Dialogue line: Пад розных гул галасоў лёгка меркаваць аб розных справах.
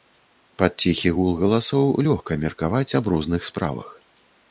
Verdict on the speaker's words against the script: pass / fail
fail